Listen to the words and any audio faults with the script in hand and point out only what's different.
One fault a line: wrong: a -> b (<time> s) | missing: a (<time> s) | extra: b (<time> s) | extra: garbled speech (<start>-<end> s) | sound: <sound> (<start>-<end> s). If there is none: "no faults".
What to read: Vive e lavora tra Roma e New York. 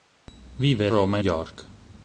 missing: lavora tra (0.9 s)
missing: New (1.2 s)